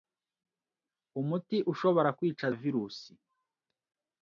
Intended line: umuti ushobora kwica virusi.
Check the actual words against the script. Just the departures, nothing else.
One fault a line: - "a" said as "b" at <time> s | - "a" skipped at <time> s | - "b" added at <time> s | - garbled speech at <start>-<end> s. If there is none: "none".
none